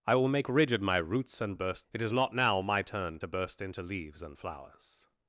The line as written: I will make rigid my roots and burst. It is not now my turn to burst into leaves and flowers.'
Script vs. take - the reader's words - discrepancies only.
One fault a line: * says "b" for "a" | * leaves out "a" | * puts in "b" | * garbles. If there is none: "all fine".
all fine